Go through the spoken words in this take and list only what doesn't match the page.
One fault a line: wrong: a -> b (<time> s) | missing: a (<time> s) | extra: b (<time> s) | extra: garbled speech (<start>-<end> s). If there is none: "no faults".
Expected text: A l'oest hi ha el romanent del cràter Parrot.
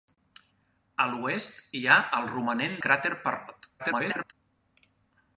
missing: del (2.8 s)
extra: garbled speech (3.8-4.3 s)